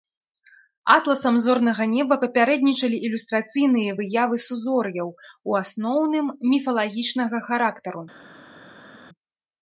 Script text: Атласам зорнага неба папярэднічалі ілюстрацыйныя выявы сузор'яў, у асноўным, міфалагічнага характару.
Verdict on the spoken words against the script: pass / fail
pass